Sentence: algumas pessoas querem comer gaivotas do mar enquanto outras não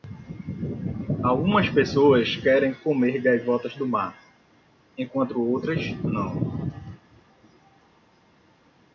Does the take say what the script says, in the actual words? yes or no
yes